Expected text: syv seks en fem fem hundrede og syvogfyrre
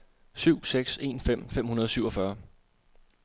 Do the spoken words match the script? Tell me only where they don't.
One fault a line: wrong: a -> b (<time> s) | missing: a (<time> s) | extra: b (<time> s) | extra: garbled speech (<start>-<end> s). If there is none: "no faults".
no faults